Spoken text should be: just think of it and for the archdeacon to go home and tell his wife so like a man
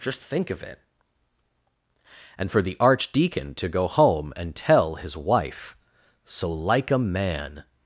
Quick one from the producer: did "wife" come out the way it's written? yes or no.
yes